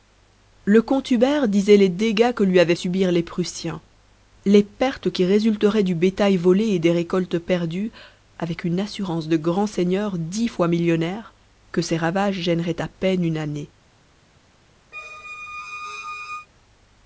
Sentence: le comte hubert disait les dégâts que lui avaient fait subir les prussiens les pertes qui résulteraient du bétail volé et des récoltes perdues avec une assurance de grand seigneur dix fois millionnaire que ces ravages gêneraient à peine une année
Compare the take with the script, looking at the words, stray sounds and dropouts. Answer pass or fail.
fail